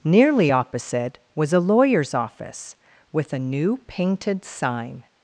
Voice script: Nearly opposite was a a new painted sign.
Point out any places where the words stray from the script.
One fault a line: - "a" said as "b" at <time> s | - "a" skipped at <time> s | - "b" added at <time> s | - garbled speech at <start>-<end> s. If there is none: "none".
- "lawyer's office with" added at 1.6 s